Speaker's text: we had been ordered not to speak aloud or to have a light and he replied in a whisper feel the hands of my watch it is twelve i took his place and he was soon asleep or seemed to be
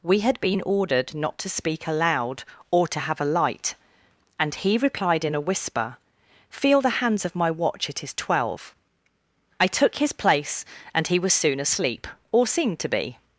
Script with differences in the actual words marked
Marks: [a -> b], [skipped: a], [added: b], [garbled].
we had been ordered not to speak aloud or to have a light and he replied in a whisper feel the hands of my watch it is twelve i took his place and he was soon asleep or seemed to be